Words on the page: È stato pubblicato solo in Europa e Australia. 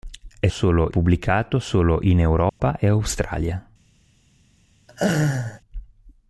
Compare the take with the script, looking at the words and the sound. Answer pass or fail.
fail